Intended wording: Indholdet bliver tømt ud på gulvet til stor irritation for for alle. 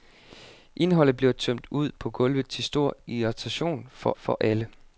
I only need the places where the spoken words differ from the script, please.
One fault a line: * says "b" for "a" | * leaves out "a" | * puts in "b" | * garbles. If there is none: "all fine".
all fine